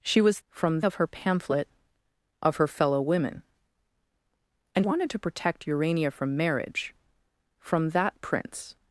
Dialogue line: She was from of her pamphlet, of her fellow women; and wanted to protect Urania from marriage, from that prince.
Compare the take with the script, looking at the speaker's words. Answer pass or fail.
pass